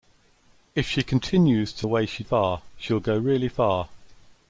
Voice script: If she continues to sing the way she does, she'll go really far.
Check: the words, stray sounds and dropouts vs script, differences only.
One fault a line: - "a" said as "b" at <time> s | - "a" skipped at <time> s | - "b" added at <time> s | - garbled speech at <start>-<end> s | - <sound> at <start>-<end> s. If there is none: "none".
- "sing" skipped at 1.9 s
- "does" said as "far" at 2.2 s